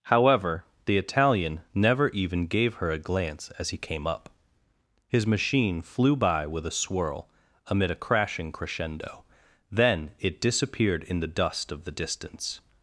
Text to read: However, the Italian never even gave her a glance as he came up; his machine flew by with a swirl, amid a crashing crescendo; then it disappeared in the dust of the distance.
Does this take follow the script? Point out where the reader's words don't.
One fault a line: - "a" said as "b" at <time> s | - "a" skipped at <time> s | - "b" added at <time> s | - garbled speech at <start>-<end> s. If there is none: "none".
none